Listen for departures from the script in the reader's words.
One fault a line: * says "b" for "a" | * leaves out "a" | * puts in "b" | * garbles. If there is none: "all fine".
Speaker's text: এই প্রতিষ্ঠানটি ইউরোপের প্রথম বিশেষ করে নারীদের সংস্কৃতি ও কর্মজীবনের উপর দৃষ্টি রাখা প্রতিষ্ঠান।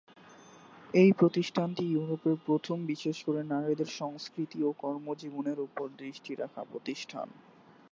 all fine